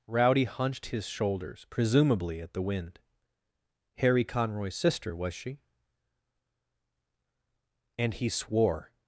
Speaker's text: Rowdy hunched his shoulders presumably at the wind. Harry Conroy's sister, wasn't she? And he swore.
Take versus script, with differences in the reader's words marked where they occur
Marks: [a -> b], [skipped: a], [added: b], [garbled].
Rowdy hunched his shoulders presumably at the wind. Harry Conroy's sister, [wasn't -> was] she? And he swore.